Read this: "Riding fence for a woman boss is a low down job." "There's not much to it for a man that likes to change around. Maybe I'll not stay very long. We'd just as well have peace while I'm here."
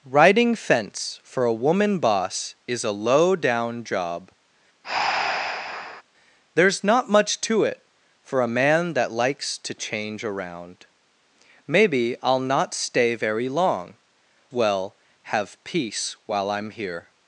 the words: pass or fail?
fail